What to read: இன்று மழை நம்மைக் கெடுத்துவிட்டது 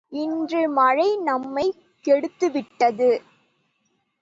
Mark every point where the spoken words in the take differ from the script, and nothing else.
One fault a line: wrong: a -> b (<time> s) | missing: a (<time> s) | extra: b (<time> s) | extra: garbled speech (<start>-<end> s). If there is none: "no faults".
no faults